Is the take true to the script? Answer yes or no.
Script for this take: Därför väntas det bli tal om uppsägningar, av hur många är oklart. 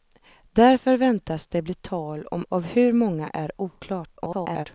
no